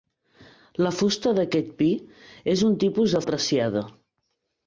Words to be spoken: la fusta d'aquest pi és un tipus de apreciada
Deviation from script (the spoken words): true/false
false